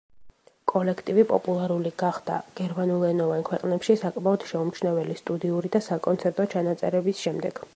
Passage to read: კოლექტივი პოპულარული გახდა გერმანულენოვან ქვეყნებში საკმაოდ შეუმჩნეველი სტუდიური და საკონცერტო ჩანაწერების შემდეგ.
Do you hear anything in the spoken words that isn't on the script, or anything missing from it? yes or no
no